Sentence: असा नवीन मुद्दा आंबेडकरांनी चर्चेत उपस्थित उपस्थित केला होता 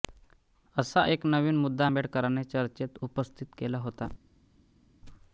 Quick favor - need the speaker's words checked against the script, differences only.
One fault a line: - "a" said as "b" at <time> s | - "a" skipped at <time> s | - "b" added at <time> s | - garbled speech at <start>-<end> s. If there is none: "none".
- "एक" added at 1.0 s
- "उपस्थित" skipped at 3.5 s